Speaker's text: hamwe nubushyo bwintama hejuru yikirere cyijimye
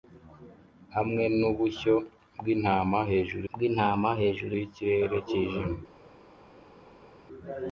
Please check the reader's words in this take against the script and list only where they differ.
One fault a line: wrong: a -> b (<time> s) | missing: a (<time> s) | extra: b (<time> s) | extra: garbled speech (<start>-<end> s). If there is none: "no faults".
extra: bwintama hejuru (3.5 s)